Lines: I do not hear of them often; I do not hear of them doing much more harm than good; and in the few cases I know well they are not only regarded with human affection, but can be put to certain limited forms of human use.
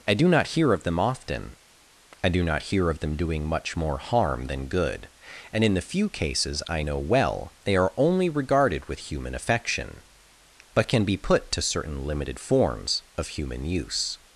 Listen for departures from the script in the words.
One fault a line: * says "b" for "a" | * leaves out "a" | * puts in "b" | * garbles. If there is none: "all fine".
* leaves out "not"